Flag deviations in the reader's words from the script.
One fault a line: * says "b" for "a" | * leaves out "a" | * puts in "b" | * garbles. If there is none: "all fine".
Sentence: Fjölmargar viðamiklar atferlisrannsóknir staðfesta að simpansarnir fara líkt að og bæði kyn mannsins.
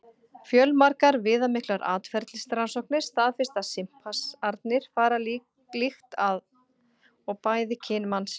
all fine